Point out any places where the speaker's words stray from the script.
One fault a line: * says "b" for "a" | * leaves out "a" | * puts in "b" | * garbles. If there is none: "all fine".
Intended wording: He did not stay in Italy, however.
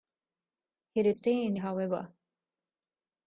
* leaves out "not"
* leaves out "Italy"